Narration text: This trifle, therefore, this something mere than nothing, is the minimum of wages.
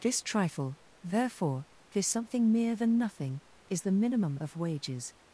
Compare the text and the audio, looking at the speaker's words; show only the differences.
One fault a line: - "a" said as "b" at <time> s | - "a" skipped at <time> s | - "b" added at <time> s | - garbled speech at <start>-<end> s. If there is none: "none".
none